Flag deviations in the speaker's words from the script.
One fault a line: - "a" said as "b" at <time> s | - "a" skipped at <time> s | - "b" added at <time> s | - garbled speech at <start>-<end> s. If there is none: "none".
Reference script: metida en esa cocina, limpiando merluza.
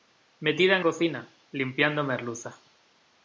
- "esa" skipped at 0.8 s